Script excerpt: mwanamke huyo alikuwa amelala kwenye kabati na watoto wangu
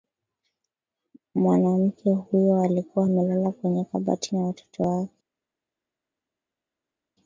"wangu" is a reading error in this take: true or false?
true